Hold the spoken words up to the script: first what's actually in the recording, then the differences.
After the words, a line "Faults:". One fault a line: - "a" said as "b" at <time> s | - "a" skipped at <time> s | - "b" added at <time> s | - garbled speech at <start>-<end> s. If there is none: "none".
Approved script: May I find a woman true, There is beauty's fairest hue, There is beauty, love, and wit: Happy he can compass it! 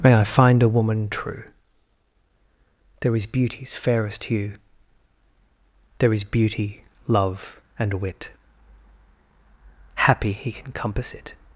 May I find a woman true, There is beauty's fairest hue, There is beauty, love, and wit: Happy he can compass it!
Faults:
none